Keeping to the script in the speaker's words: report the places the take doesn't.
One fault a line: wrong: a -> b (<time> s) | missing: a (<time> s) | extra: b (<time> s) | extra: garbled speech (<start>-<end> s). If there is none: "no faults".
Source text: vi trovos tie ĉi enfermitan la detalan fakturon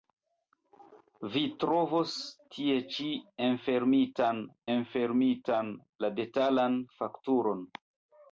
extra: enfermitan (4.8 s)